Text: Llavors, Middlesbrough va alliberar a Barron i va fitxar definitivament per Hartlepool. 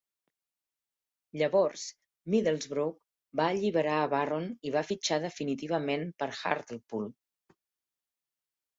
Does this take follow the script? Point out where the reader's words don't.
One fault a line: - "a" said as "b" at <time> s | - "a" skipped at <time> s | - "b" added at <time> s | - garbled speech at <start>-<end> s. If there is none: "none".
none